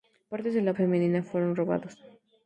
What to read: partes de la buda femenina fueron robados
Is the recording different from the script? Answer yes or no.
yes